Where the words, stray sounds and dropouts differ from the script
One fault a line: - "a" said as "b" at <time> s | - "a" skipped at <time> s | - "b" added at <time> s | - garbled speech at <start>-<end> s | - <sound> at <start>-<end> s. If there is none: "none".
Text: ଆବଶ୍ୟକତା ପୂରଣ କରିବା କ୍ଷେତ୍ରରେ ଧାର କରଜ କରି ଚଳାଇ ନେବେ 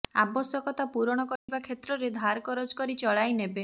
- dropout at 1.4-1.5 s